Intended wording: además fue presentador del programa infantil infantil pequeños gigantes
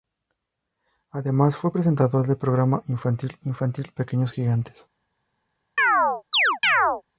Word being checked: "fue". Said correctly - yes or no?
yes